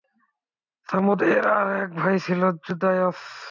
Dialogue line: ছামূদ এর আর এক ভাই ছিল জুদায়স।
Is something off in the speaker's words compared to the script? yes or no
no